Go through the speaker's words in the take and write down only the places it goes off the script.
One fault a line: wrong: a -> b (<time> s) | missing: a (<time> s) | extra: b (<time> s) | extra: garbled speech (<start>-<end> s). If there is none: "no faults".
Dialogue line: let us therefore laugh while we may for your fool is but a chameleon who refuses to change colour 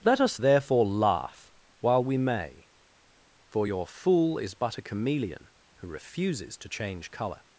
no faults